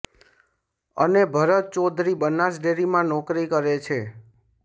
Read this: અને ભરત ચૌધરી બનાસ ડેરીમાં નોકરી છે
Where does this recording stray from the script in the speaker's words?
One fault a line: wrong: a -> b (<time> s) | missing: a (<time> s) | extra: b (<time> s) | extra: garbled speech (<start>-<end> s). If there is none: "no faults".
extra: કરે (3.5 s)